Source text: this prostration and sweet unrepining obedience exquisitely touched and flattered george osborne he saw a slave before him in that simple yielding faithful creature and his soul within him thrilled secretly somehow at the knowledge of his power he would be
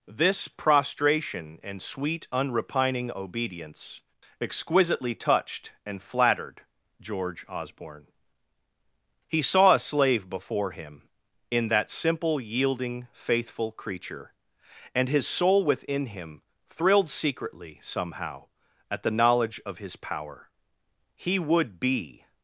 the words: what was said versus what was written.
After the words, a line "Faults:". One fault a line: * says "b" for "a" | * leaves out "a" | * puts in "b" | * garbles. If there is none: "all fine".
this prostration and sweet unrepining obedience exquisitely touched and flattered george osborne he saw a slave before him in that simple yielding faithful creature and his soul within him thrilled secretly somehow at the knowledge of his power he would be
Faults:
all fine